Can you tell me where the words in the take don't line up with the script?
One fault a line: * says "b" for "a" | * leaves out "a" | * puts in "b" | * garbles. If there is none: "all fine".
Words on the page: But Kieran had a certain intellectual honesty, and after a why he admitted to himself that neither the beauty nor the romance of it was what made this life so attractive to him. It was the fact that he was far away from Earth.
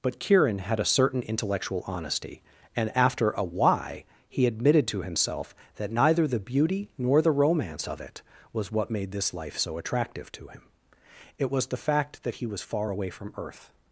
all fine